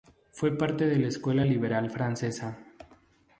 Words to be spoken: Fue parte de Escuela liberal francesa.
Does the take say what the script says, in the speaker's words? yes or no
no